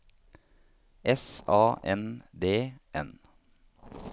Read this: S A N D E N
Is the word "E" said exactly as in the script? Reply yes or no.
no